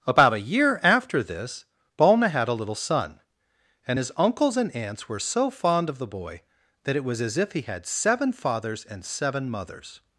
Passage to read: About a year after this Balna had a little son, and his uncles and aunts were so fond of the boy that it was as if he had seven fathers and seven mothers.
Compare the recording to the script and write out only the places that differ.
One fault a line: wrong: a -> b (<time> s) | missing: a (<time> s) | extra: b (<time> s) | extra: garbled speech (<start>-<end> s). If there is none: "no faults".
no faults